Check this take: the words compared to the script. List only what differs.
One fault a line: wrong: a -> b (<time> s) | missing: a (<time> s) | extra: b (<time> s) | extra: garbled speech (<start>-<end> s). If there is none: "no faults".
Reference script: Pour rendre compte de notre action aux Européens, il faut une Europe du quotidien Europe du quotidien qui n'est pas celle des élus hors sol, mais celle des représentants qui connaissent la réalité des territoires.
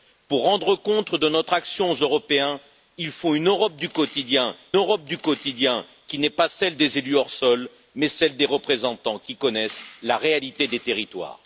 no faults